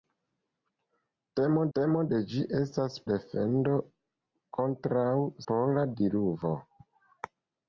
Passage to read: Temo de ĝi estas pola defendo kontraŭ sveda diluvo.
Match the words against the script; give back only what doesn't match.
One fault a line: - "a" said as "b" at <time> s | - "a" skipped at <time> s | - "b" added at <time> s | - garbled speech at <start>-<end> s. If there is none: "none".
- "temo" added at 1.8 s
- "pola" skipped at 3.0 s
- "sveda" said as "pola" at 5.5 s